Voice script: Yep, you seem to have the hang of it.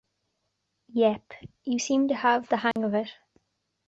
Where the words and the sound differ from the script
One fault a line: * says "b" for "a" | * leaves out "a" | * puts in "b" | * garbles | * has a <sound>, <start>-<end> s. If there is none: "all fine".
* has a dropout, 2.7-2.8 s